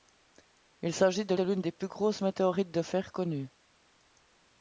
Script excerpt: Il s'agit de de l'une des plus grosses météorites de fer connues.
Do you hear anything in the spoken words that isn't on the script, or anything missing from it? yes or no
no